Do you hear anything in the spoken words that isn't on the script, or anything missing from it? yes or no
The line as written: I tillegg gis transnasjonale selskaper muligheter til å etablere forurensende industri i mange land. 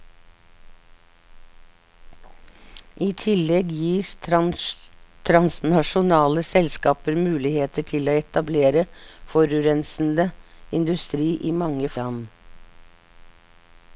no